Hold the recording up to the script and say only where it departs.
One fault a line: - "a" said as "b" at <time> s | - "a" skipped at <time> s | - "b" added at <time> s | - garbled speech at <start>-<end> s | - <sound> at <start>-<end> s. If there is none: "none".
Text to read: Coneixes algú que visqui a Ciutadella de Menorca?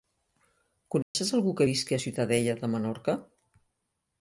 - dropout at 1.0-1.1 s